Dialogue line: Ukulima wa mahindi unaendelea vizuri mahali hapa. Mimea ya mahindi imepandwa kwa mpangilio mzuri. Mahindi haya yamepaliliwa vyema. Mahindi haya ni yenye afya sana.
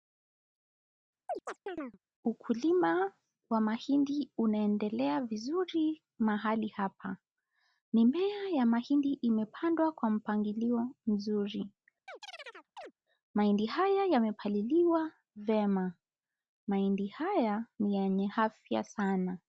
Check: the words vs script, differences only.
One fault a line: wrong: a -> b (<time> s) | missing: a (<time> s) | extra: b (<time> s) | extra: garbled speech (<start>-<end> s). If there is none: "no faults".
no faults